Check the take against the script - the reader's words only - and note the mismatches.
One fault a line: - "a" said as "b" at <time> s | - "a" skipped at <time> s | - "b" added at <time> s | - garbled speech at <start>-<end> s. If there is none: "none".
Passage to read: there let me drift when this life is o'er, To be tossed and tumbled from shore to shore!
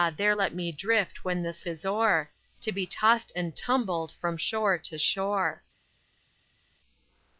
- "life" skipped at 1.7 s